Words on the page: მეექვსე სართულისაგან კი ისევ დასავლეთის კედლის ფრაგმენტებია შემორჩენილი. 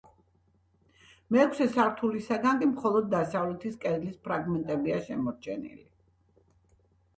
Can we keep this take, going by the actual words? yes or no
no